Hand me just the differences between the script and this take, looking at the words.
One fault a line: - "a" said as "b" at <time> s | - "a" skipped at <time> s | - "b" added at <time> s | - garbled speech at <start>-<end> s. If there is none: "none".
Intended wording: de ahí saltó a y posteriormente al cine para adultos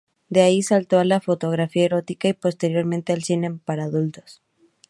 - "la fotografía erótica" added at 1.1 s